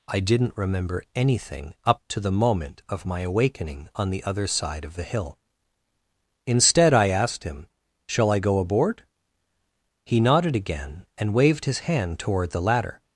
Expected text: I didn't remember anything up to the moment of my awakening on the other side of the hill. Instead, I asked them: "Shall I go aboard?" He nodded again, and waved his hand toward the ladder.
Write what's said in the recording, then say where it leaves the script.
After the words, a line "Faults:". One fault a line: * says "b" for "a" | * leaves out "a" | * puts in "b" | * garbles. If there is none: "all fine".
I didn't remember anything up to the moment of my awakening on the other side of the hill. Instead, I asked him: "Shall I go aboard?" He nodded again, and waved his hand toward the ladder.
Faults:
* says "him" for "them"